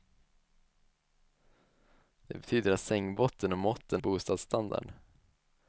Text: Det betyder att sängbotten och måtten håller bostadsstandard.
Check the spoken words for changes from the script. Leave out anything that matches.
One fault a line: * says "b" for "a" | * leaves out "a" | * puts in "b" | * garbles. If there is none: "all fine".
* leaves out "håller"